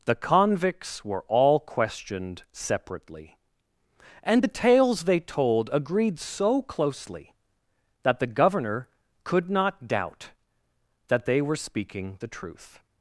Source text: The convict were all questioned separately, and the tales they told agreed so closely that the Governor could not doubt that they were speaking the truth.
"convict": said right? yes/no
no